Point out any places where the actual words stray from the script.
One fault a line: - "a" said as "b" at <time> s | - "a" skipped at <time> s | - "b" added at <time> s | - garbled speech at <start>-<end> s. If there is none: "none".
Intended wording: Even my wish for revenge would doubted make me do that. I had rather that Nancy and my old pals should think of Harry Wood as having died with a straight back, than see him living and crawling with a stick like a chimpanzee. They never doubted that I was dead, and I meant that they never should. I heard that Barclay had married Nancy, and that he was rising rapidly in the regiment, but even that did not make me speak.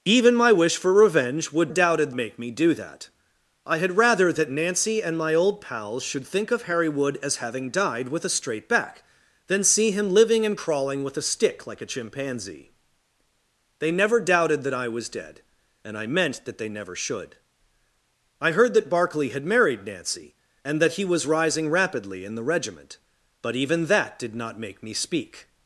none